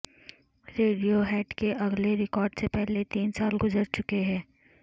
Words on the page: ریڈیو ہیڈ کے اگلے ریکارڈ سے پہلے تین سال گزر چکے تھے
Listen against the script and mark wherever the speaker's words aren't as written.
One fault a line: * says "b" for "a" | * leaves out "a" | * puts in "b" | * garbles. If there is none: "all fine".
* says "ہیں" for "تھے"